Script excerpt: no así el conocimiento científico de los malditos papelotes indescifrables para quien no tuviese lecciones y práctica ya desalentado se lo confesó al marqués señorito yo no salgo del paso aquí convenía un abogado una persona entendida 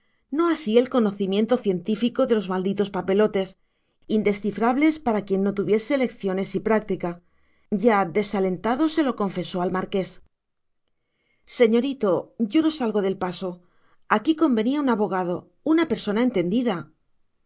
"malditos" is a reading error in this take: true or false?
false